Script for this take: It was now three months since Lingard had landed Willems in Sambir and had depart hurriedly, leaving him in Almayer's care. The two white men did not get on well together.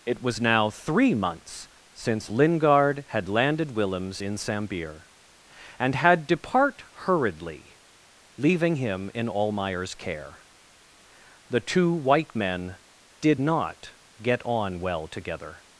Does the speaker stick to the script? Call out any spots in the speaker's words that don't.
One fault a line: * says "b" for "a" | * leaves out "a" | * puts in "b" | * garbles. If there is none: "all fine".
all fine